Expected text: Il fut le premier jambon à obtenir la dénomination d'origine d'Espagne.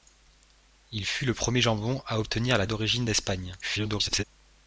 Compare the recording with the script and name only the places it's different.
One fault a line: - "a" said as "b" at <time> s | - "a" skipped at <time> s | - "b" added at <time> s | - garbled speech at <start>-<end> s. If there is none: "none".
- "dénomination" skipped at 2.6 s
- garbled speech at 3.6-4.2 s